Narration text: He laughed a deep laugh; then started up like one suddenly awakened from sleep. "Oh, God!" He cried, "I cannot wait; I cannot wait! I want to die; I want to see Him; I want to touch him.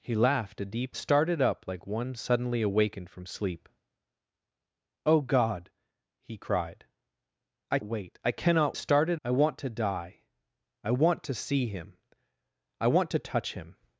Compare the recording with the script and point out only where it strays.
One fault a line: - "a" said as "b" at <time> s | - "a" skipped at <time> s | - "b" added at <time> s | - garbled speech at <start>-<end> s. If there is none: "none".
- "laugh then" skipped at 1.0 s
- "cannot" skipped at 7.8 s
- "wait" said as "started" at 8.7 s